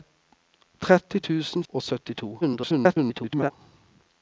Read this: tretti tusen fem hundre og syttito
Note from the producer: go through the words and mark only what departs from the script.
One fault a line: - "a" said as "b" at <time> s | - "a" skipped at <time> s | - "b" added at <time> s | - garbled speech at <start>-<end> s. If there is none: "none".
- "fem hundre" skipped at 1.6 s
- garbled speech at 2.4-3.5 s